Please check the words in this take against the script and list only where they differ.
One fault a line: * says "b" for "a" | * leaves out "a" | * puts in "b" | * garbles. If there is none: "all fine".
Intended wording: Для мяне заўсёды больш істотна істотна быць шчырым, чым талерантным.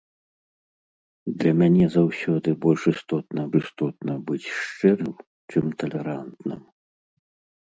all fine